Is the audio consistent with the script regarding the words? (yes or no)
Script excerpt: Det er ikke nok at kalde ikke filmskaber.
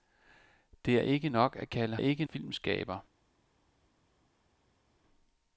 yes